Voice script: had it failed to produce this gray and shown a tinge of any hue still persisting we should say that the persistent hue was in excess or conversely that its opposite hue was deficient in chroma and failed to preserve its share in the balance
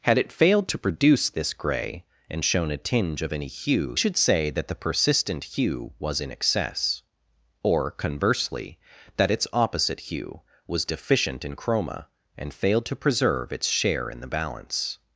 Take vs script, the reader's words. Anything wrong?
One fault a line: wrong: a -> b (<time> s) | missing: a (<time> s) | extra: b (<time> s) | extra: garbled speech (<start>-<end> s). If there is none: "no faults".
missing: still persisting we (4.0 s)